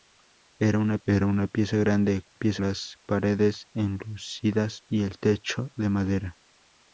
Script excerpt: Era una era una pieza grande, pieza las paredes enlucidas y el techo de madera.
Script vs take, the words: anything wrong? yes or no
no